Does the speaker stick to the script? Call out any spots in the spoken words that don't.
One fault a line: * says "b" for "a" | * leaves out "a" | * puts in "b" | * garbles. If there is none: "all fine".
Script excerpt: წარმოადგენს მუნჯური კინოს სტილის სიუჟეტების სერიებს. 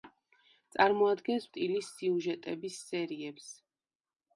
* leaves out "მუნჯური კინოს"